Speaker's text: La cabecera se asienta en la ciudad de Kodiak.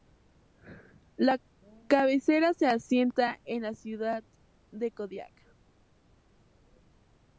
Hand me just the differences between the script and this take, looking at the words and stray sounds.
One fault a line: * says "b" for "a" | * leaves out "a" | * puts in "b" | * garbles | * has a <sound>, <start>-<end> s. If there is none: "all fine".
all fine